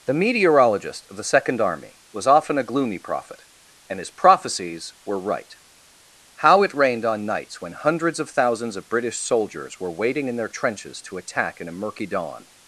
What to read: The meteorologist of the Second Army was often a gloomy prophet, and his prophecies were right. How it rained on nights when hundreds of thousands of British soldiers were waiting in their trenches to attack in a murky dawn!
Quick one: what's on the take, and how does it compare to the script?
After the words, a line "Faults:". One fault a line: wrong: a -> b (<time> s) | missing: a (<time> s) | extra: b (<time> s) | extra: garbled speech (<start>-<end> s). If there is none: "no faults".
The meteorologist of the Second Army was often a gloomy prophet, and his prophecies were right. How it rained on nights when hundreds of thousands of British soldiers were waiting in their trenches to attack in a murky dawn!
Faults:
no faults